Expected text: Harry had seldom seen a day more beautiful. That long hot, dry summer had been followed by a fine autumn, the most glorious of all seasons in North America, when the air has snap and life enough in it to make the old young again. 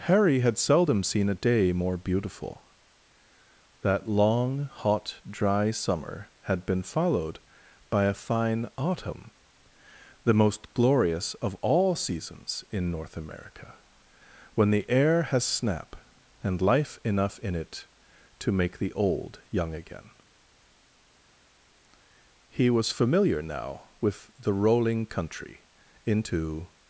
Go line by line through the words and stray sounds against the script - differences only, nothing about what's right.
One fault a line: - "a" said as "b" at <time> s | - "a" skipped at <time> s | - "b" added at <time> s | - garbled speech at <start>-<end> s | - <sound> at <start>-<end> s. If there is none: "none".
- "He was familiar now with the rolling country into" added at 22.5 s